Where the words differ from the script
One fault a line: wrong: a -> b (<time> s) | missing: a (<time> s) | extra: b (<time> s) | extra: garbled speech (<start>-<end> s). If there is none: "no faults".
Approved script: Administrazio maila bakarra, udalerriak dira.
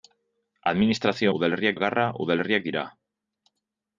wrong: maila -> udalerriak (1.4 s)